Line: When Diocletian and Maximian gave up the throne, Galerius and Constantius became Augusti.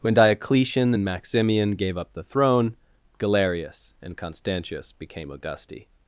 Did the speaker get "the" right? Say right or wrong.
right